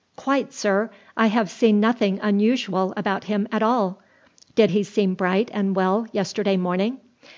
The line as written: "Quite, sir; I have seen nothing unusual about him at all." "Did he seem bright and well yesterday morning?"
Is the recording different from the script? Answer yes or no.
no